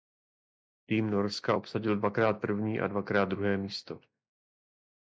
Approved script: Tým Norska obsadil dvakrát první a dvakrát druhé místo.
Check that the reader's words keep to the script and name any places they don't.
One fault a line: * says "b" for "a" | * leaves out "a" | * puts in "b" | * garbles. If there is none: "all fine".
all fine